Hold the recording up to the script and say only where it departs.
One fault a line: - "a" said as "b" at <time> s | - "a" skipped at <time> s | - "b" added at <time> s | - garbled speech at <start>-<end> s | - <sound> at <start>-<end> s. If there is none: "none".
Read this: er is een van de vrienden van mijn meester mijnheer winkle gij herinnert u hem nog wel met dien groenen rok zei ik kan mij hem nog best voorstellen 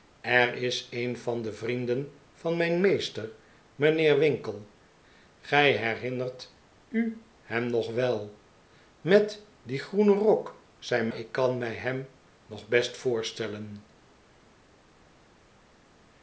none